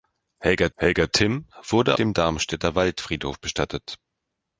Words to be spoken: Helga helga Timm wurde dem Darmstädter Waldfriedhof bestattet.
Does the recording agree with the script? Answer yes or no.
yes